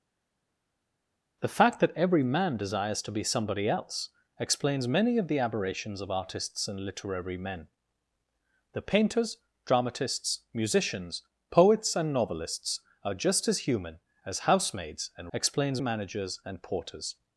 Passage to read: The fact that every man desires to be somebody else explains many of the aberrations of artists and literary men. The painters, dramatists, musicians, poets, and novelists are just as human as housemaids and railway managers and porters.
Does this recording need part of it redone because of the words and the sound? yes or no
yes